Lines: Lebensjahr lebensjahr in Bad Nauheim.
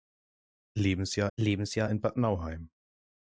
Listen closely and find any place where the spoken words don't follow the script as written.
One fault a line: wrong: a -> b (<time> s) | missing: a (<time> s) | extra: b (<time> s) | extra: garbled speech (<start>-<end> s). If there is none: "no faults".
no faults